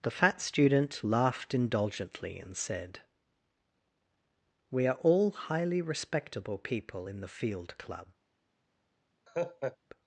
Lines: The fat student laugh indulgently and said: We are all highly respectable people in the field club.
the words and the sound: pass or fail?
fail